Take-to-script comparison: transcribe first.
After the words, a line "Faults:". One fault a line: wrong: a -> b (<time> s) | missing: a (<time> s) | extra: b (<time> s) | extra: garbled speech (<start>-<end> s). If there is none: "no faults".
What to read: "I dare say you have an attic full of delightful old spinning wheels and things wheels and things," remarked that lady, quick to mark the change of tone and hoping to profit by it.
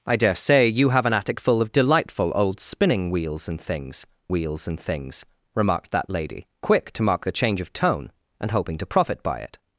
"I dare say you have an attic full of delightful old spinning wheels and things wheels and things," remarked that lady, quick to mark the change of tone and hoping to profit by it.
Faults:
no faults